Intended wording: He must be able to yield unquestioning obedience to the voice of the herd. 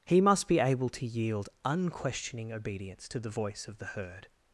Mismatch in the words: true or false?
false